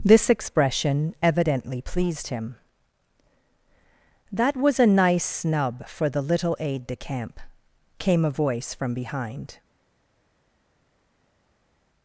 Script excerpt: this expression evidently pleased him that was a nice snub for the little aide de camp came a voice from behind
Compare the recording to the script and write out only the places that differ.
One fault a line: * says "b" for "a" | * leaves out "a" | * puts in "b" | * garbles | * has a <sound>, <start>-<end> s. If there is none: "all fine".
all fine